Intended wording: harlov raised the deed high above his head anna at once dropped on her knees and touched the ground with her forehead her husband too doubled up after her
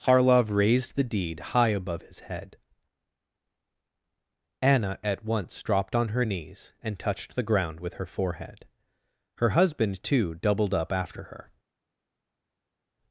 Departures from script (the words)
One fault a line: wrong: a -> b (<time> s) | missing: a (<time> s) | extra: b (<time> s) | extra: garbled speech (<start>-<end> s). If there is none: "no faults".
no faults